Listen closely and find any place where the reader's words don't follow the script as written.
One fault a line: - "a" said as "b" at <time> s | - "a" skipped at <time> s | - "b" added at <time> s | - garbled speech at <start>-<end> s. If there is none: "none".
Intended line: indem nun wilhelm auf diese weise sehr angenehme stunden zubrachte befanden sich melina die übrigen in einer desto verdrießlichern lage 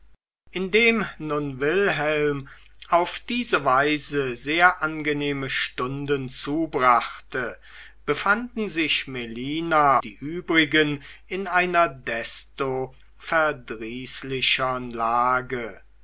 none